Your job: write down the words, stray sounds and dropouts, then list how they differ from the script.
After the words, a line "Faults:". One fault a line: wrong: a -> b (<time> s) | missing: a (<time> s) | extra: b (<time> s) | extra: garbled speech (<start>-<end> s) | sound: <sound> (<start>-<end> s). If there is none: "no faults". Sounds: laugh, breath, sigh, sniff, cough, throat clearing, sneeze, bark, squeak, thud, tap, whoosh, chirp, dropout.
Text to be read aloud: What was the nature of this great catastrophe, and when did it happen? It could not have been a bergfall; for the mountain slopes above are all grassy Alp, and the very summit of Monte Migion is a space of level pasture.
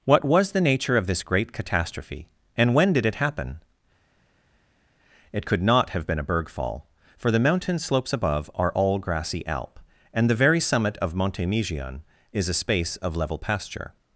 What was the nature of this great catastrophe, and when did it happen? It could not have been a bergfall; for the mountain slopes above are all grassy Alp, and the very summit of Monte Migion is a space of level pasture.
Faults:
no faults